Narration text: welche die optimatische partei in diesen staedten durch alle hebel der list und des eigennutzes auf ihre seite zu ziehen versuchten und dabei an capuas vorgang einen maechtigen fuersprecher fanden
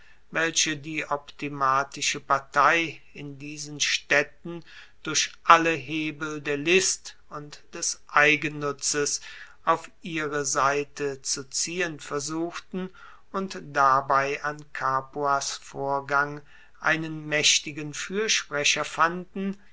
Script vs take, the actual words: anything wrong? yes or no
no